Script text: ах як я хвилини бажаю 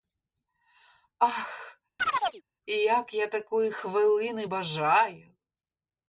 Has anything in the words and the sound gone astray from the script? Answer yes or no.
yes